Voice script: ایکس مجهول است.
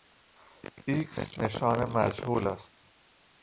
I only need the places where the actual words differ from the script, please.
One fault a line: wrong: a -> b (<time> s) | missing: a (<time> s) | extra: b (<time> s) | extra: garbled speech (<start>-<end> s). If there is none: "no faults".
extra: نشان (1.4 s)